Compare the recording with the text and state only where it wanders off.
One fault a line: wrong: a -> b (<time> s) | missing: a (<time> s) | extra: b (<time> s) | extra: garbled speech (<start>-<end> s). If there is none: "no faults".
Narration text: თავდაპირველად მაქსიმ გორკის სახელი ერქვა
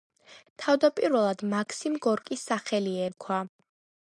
no faults